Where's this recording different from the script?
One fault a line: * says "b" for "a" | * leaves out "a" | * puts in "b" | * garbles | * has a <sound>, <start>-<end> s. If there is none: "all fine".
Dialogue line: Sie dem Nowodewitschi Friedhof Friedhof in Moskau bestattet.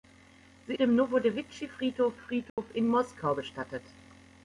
* has a dropout, 2.5-2.6 s